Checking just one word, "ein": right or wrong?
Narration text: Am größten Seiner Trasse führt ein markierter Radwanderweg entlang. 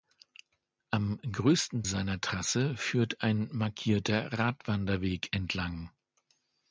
right